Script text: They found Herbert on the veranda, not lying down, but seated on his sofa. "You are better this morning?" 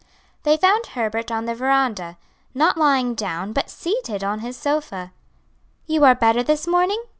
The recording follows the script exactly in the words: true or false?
true